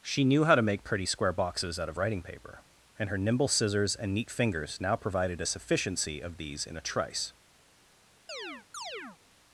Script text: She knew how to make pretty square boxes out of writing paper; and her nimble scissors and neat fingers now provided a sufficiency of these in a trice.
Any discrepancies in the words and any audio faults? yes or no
yes